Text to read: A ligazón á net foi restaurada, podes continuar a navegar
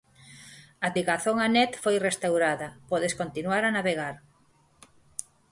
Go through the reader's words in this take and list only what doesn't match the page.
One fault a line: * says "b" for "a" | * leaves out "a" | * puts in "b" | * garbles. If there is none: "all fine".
all fine